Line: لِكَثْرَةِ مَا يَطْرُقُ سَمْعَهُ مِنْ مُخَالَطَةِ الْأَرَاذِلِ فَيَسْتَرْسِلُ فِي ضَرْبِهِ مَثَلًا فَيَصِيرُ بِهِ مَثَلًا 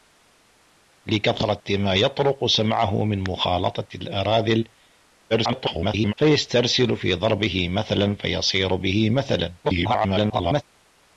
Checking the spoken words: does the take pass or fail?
fail